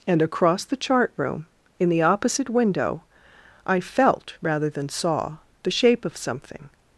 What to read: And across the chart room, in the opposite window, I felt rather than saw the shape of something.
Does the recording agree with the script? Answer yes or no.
yes